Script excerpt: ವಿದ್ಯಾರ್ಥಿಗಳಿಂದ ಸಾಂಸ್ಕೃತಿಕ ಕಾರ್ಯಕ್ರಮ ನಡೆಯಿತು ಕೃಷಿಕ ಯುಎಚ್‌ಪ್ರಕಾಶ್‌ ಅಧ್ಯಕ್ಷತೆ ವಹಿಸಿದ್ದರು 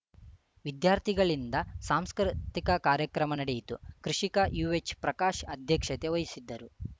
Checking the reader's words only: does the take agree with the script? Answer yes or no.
yes